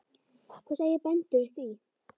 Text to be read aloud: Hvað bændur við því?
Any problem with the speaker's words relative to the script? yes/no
yes